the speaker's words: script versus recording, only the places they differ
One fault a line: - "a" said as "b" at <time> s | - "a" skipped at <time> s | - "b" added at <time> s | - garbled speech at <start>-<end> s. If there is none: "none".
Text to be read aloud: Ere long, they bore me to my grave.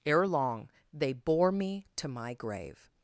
none